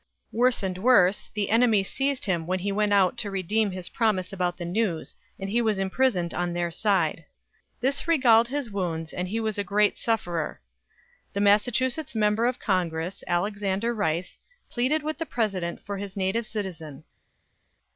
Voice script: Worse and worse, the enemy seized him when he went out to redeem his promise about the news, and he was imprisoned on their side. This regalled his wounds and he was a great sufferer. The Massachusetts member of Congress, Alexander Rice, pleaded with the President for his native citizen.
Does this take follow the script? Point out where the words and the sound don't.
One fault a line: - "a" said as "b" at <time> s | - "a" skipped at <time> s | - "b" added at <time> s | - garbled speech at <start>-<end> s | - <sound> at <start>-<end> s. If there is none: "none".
none